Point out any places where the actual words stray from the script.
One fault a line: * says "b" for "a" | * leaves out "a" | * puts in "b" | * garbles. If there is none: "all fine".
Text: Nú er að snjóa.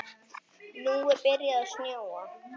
* puts in "byrjað"